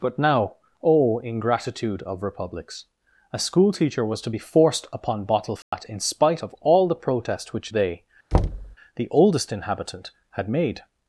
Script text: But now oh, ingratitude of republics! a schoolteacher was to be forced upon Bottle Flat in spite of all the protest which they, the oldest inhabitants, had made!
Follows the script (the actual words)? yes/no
no